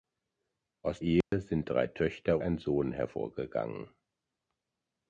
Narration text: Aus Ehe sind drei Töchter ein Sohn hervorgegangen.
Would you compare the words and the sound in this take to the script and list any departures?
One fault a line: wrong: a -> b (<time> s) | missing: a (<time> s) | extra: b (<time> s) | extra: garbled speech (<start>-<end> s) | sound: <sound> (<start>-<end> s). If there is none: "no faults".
sound: dropout (1.2-1.3 s)